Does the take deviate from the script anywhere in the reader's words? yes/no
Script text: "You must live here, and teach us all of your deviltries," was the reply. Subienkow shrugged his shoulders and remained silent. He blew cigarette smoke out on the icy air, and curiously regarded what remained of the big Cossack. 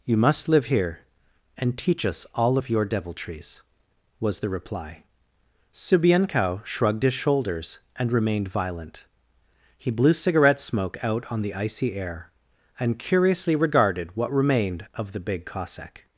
yes